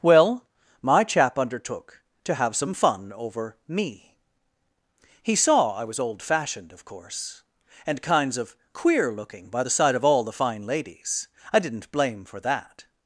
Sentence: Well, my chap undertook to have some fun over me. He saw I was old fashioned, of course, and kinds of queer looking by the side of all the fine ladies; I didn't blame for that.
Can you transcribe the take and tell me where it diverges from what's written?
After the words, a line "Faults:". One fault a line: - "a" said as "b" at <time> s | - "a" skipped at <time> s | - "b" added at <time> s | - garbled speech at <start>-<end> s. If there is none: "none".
Well, my chap undertook to have some fun over me. He saw I was old fashioned, of course, and kinds of queer looking by the side of all the fine ladies; I didn't blame for that.
Faults:
none